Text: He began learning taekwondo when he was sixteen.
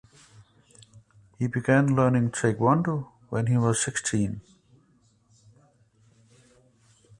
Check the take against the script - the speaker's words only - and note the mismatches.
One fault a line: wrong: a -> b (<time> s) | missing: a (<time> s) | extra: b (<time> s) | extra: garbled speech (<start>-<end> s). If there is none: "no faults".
no faults